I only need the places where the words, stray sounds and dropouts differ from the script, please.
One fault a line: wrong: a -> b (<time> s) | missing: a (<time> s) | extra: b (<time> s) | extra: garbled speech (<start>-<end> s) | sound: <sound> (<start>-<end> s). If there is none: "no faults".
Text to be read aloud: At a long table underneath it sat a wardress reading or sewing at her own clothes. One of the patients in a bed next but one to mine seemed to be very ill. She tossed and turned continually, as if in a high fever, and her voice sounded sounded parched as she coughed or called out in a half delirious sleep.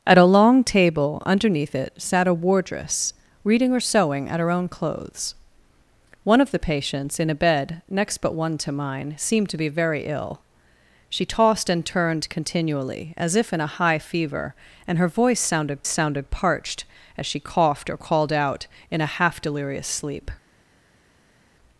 no faults